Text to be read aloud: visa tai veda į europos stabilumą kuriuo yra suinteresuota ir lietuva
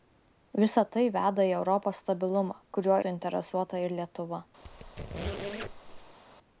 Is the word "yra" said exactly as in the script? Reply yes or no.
no